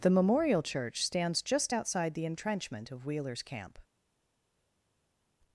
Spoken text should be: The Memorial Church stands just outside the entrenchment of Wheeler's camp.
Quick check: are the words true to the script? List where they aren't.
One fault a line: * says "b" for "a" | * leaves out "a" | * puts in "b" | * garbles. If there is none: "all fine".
all fine